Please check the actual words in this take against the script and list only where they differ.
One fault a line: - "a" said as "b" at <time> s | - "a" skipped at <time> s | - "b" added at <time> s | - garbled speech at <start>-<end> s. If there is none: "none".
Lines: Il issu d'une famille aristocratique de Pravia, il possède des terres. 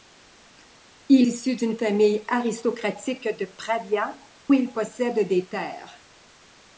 none